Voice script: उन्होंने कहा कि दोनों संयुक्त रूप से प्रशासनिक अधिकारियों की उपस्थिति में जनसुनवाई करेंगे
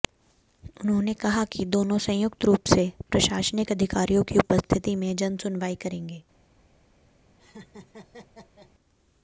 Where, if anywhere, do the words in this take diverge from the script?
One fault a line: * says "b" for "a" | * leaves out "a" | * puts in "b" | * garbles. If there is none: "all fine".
all fine